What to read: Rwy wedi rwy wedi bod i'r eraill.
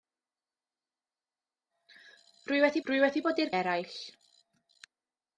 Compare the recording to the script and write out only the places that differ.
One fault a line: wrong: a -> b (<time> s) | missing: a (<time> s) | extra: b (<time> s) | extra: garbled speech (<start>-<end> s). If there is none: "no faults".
no faults